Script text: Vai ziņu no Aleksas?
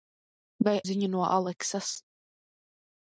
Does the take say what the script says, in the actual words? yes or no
yes